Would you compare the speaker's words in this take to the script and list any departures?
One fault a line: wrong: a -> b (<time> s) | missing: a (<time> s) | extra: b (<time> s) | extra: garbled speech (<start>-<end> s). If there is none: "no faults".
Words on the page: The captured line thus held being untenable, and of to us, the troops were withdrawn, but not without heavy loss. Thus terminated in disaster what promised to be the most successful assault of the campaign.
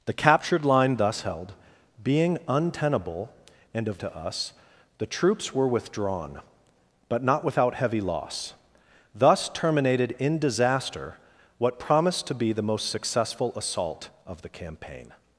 no faults